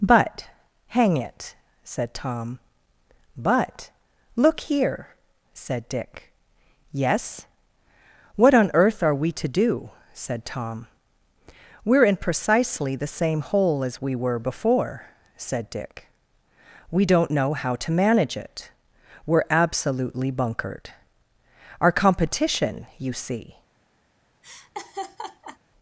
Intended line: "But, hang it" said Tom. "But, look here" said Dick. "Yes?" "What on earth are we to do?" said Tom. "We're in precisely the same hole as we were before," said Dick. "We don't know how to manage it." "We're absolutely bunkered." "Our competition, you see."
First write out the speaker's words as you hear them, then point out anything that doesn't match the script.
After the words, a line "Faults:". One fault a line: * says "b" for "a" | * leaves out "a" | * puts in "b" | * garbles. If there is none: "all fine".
"But, hang it" said Tom. "But, look here" said Dick. "Yes?" "What on earth are we to do?" said Tom. "We're in precisely the same hole as we were before," said Dick. "We don't know how to manage it." "We're absolutely bunkered." "Our competition, you see."
Faults:
all fine